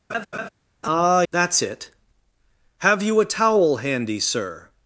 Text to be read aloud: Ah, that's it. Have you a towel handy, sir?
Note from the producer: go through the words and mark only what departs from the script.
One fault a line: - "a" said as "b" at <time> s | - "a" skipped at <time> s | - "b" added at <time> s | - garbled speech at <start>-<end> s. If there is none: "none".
none